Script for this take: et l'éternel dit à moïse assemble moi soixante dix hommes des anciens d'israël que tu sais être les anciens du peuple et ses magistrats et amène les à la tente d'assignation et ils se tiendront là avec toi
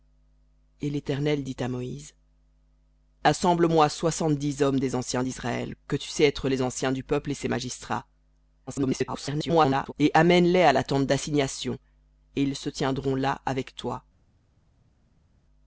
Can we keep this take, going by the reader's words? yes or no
no